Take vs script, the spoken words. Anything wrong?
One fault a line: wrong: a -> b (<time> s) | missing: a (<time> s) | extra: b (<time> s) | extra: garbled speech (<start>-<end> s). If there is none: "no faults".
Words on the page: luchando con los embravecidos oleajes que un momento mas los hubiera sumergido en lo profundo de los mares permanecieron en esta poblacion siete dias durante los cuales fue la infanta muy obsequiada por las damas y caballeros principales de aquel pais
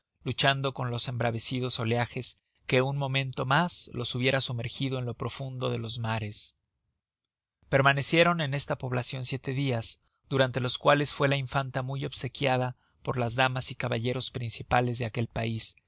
no faults